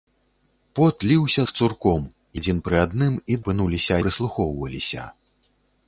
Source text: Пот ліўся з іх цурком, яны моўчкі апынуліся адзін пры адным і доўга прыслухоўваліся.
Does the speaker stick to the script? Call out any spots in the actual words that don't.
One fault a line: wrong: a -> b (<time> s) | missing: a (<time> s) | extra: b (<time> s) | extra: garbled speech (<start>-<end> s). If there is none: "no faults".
missing: з (1.4 s)
missing: яны моўчкі апынуліся (2.1 s)
wrong: доўга -> апынуліся (3.4 s)